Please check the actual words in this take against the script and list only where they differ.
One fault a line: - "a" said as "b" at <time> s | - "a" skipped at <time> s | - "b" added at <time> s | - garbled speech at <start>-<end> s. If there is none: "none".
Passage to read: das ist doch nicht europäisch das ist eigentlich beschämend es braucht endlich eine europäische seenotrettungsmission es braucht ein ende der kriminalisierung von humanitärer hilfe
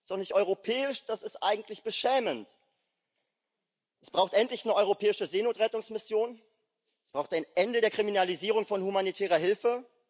none